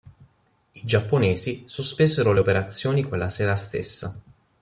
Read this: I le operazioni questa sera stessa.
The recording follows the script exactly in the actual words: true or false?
false